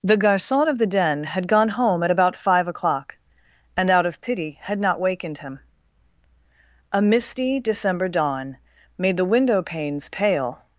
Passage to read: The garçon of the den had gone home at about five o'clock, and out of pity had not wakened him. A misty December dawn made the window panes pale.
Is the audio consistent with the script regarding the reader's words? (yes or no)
yes